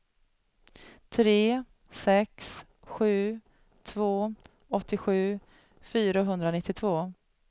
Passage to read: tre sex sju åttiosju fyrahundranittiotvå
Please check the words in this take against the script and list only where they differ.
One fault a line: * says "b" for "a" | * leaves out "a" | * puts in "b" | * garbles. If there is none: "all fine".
* puts in "två"